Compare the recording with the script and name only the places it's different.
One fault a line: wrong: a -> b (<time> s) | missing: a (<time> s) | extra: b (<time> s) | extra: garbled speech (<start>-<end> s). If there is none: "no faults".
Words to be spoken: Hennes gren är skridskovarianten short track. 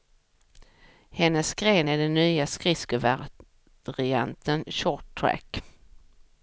extra: den nya (2.0 s)